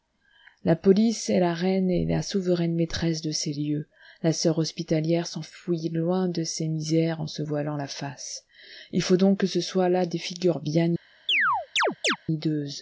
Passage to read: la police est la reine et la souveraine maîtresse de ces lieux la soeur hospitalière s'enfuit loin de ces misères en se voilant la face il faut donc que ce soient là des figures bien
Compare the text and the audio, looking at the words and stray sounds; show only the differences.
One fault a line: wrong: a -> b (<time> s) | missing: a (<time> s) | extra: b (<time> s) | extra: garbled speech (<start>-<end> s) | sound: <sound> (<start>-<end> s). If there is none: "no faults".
sound: chirp (11.3-12.2 s)